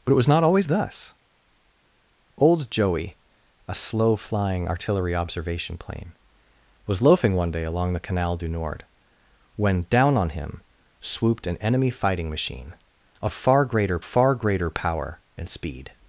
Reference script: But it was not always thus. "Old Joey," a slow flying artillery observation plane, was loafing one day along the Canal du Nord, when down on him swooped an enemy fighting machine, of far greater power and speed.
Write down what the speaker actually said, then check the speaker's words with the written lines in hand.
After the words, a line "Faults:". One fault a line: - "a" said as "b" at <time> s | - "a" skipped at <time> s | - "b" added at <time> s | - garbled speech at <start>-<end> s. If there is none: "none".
But it was not always thus. "Old Joey," a slow flying artillery observation plane, was loafing one day along the Canal du Nord, when down on him swooped an enemy fighting machine, of far greater far greater power and speed.
Faults:
- "far greater" added at 14.0 s